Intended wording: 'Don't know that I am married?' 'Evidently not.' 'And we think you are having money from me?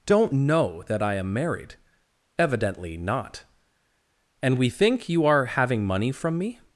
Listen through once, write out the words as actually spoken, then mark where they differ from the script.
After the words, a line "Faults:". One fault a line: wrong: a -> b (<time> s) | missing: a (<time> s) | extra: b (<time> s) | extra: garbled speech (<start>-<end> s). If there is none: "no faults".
'Don't know that I am married?' 'Evidently not.' 'And we think you are having money from me?
Faults:
no faults